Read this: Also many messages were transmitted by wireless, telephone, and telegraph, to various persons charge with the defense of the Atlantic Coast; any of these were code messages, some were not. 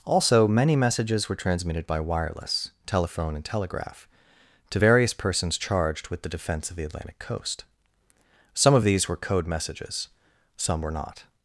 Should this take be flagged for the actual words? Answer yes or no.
yes